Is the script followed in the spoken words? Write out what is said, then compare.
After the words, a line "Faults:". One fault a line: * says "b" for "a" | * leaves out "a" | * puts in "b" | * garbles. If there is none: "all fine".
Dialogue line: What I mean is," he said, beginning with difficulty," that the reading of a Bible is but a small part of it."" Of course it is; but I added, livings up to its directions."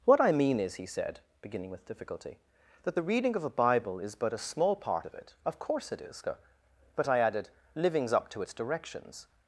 What I mean is," he said, beginning with difficulty," that the reading of a Bible is but a small part of it."" Of course it is; but I added, livings up to its directions."
Faults:
all fine